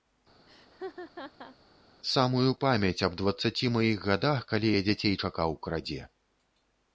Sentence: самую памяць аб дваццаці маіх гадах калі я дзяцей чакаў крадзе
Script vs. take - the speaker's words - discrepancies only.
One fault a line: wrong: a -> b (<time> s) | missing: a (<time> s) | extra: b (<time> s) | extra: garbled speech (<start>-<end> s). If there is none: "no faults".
no faults